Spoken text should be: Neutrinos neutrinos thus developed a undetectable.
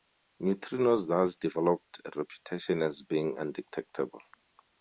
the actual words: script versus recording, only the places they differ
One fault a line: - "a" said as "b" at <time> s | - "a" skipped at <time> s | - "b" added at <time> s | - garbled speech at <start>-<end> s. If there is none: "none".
- "neutrinos" skipped at 1.1 s
- "reputation as being" added at 2.2 s